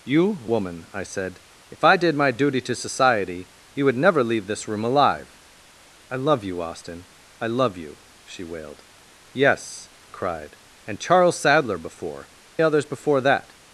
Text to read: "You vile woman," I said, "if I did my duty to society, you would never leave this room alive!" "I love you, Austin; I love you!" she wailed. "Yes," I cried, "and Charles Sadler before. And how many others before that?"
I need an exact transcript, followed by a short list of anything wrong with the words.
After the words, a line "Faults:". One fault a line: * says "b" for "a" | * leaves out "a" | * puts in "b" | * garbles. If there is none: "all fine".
"You woman," I said, "if I did my duty to society, you would never leave this room alive!" "I love you, Austin; I love you!" she wailed. "Yes," cried, "and Charles Sadler before. Others before that?"
Faults:
* leaves out "vile"
* leaves out "I"
* leaves out "And how many"